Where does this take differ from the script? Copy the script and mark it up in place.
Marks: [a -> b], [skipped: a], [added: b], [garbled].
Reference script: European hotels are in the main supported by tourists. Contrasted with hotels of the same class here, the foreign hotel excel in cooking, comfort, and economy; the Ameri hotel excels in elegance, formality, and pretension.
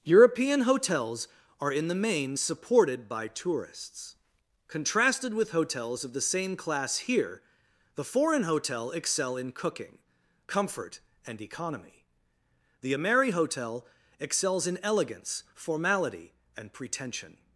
European hotels are in the main supported by tourists. Contrasted with hotels of the same class here, the foreign hotel excel in cooking, comfort, and economy; the Ameri hotel excels in elegance, formality, and pretension.